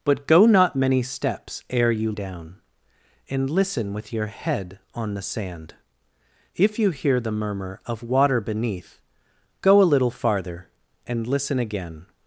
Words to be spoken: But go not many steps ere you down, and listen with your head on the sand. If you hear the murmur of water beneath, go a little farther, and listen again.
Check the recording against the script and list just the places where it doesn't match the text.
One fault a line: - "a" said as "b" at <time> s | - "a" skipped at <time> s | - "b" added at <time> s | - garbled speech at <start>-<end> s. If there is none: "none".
none